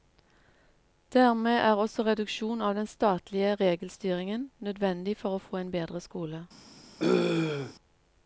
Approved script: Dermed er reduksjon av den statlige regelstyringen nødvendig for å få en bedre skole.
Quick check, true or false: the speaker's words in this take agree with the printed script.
false